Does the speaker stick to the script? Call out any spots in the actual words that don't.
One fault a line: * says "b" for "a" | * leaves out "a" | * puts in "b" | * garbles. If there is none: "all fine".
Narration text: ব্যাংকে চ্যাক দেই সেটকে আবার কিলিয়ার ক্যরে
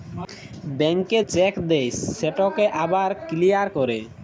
all fine